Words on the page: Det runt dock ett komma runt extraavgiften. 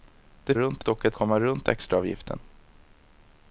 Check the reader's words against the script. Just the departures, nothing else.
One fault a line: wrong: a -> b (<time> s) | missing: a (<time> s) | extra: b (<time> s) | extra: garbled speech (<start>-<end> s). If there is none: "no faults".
no faults